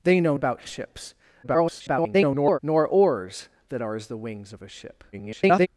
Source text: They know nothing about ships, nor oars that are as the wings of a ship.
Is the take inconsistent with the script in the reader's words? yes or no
yes